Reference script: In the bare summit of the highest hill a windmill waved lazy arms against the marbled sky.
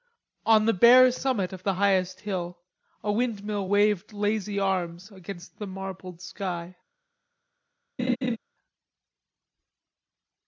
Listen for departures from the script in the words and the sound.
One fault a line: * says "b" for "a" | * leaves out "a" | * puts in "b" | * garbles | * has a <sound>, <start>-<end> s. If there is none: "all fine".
* says "On" for "In"
* has a laugh, 8.0-8.4 s